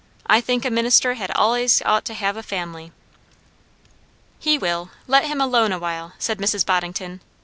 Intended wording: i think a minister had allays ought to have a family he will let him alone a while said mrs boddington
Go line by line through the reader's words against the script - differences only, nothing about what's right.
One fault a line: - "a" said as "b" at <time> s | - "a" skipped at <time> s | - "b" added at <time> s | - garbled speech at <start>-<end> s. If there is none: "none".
none